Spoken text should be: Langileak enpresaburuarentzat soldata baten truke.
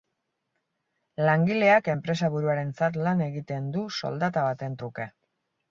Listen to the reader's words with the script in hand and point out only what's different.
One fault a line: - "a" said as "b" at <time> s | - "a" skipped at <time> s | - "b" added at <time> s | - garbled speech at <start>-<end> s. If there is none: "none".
- "lan egiten du" added at 3.1 s